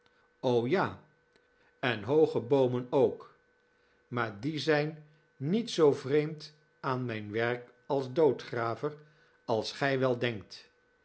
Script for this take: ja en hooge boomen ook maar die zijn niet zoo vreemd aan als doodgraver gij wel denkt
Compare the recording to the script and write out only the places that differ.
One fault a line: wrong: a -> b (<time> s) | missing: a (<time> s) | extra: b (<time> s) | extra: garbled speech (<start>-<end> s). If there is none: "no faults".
extra: mijn werk (7.1 s)
extra: als (9.5 s)